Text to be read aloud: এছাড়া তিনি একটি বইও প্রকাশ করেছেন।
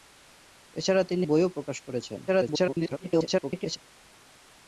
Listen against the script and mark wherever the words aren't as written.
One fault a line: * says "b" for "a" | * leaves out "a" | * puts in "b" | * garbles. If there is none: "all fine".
* leaves out "একটি"
* garbles